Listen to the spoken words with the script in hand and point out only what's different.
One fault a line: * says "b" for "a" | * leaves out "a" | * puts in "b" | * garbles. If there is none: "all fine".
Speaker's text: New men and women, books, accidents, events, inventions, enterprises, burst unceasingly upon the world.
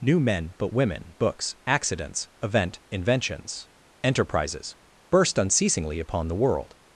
* says "but" for "and"
* says "event" for "events"